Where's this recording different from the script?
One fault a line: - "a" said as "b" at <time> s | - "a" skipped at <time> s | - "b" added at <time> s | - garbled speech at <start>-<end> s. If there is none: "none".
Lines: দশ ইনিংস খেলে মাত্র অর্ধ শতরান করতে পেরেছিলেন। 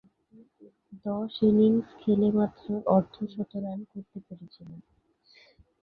none